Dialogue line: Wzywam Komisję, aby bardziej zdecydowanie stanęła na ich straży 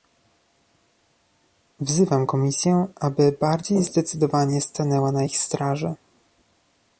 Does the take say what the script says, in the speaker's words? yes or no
yes